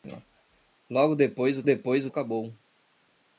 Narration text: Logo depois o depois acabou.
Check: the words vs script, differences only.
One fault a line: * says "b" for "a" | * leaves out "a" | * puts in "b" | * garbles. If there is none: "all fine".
all fine